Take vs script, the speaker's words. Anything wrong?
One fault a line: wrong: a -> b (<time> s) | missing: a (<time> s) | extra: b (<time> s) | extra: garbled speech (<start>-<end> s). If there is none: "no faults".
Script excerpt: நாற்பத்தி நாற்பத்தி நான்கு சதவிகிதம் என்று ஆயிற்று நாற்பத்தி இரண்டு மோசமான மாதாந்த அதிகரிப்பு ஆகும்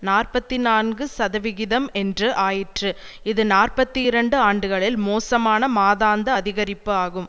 missing: நாற்பத்தி (0.6 s)
extra: இது (3.2 s)
extra: ஆண்டுகளில் (4.4 s)